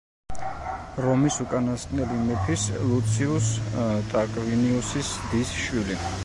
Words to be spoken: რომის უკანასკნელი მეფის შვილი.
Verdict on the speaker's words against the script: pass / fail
fail